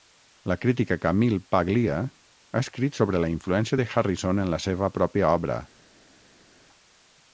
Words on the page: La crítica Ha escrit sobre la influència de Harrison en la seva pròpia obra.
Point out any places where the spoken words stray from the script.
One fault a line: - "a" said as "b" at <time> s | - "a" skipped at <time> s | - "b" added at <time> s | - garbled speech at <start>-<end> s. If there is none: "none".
- "Camille Paglia" added at 1.0 s